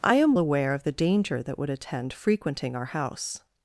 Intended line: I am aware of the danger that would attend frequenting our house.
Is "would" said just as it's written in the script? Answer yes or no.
yes